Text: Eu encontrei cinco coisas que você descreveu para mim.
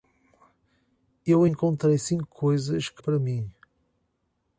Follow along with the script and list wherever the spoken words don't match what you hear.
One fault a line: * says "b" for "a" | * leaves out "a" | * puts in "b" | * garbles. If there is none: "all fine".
* leaves out "você descreveu"